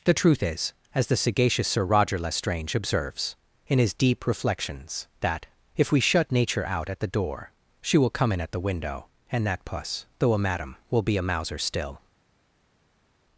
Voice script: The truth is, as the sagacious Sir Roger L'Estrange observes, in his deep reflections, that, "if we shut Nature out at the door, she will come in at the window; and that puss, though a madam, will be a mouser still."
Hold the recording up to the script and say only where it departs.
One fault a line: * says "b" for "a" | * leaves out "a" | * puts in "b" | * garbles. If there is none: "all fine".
all fine